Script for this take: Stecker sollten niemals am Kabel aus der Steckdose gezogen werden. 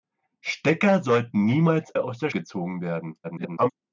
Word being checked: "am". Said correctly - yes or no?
no